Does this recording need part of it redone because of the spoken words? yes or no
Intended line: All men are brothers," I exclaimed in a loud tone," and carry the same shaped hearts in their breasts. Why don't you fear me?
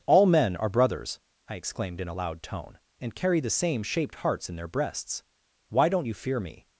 no